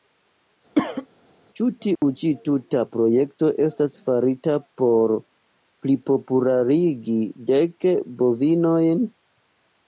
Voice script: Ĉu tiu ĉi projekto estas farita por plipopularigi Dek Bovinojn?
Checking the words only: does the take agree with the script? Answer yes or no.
no